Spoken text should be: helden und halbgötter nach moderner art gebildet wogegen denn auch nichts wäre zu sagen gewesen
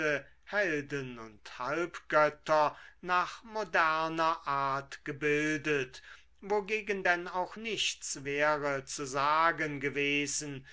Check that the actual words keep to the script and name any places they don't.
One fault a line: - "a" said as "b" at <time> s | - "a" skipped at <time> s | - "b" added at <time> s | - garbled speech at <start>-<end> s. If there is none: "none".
none